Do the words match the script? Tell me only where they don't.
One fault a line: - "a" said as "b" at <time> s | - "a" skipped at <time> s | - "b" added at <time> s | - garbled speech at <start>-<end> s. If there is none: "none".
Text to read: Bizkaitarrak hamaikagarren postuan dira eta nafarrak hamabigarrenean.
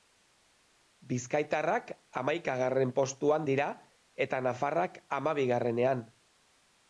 none